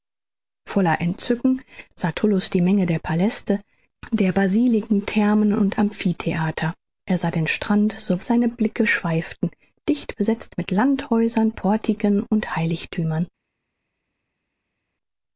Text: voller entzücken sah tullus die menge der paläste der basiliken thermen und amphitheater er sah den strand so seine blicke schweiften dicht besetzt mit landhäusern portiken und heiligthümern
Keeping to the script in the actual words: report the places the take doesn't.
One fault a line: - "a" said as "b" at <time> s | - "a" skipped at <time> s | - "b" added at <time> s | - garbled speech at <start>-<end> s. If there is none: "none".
none